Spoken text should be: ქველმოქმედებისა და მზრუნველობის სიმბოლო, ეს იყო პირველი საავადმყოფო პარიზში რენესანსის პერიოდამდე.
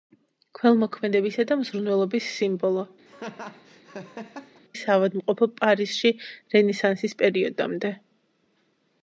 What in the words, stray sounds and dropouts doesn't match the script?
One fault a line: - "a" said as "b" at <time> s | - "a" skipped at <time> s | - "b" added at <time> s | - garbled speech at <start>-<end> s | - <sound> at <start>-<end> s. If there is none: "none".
- "ეს იყო პირველი" skipped at 2.9 s
- laugh at 3.1-4.6 s